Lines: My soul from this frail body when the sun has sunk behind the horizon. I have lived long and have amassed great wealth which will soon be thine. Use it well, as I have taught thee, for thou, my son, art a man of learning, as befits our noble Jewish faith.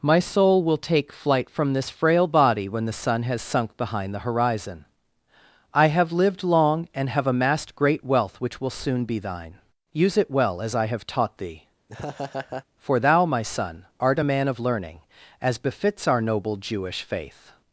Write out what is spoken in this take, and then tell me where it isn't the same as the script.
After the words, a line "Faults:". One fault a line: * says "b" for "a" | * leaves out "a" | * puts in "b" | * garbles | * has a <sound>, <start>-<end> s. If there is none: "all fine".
My soul will take flight from this frail body when the sun has sunk behind the horizon. I have lived long and have amassed great wealth which will soon be thine. Use it well, as I have taught thee, for thou, my son, art a man of learning, as befits our noble Jewish faith.
Faults:
* puts in "will take flight"
* has a laugh, 11.9-12.7 s